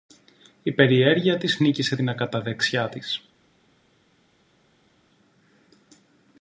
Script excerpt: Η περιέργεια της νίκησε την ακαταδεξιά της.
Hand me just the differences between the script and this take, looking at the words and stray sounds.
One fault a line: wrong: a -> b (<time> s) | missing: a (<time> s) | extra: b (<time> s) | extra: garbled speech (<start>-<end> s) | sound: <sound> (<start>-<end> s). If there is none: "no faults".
no faults